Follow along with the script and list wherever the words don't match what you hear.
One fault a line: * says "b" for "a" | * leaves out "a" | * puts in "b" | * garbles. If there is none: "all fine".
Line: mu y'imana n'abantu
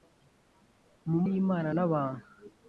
all fine